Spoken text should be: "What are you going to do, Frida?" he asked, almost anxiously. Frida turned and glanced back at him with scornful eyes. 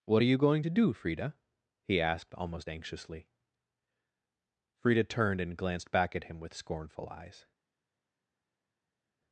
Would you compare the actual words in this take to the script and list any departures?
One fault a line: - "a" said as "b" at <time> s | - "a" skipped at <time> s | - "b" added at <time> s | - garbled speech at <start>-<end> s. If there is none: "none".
none